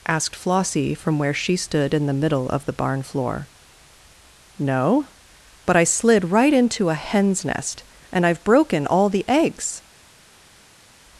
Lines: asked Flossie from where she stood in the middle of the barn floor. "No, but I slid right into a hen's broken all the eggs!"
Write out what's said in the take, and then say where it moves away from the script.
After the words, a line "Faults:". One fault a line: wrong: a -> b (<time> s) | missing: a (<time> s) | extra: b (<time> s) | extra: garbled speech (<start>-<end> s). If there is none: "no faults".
asked Flossie from where she stood in the middle of the barn floor. "No, but I slid right into a hen's nest, and I've broken all the eggs!"
Faults:
extra: nest and I've (7.4 s)